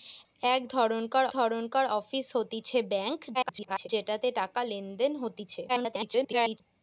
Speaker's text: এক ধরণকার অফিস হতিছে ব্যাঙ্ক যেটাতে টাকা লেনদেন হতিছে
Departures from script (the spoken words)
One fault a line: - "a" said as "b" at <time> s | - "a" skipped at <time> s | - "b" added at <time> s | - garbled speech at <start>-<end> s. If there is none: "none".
- "ধরণকার" added at 1.3 s
- garbled speech at 3.3-3.9 s
- garbled speech at 5.7-6.6 s